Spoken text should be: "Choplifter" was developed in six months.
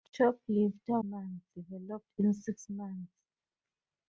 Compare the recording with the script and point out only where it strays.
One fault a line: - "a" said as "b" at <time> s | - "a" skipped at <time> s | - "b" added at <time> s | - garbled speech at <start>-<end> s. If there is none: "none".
- "was" said as "months" at 1.0 s